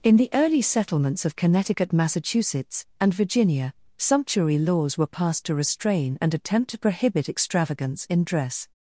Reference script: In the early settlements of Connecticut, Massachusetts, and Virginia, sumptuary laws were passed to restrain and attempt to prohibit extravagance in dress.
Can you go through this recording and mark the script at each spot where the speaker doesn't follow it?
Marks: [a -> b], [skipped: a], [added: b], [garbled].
In the early settlements of Connecticut, Massachusetts, and Virginia, sumptuary laws were passed to restrain and attempt to prohibit extravagance in dress.